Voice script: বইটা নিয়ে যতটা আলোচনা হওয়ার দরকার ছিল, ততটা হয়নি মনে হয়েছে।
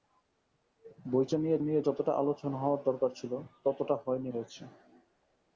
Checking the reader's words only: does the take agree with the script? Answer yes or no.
no